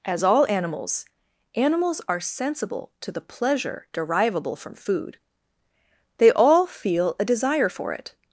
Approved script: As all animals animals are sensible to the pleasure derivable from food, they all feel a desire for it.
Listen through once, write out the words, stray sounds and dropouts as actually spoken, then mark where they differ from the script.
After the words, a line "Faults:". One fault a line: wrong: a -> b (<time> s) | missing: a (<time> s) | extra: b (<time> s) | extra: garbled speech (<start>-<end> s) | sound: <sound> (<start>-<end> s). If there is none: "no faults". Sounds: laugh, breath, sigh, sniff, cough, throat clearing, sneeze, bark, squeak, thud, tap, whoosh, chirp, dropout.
As all animals animals are sensible to the pleasure derivable from food, they all feel a desire for it.
Faults:
no faults